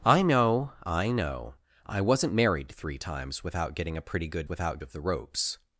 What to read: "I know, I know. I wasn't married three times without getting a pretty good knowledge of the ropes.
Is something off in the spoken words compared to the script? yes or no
yes